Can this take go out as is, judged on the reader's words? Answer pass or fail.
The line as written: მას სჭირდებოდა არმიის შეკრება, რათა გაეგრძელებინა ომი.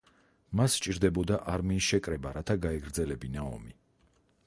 pass